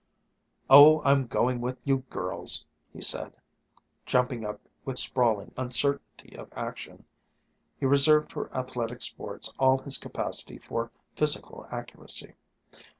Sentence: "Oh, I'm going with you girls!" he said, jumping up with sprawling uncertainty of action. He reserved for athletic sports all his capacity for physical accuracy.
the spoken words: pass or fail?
pass